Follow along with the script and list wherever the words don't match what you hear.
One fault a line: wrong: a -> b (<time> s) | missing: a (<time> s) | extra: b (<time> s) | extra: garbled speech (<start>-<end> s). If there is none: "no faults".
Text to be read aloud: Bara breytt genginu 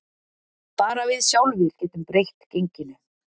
extra: við sjálfir getum (1.1 s)